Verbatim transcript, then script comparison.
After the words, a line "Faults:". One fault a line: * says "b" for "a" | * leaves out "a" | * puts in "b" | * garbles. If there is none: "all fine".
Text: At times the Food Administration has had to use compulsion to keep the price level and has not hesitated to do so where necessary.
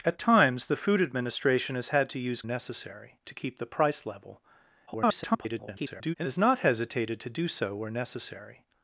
At times the Food Administration has had to use necessary to keep the price level [garbled] and has not hesitated to do so where necessary.
Faults:
* says "necessary" for "compulsion"
* garbles